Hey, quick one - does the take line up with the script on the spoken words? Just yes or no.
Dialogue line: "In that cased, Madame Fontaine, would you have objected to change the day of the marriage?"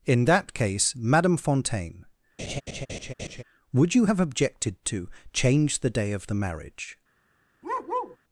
no